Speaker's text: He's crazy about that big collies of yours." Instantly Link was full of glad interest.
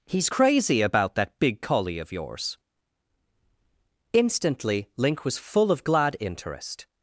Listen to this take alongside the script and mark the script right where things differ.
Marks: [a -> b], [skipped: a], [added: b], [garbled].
He's crazy about that big [collies -> collie] of yours." Instantly Link was full of glad interest.